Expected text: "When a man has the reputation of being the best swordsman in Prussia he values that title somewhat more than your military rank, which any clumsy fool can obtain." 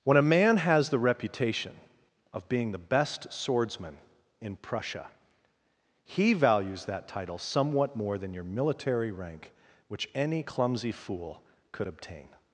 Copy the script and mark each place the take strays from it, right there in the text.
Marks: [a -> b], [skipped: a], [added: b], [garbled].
"When a man has the reputation of being the best swordsman in Prussia he values that title somewhat more than your military rank, which any clumsy fool [can -> could] obtain."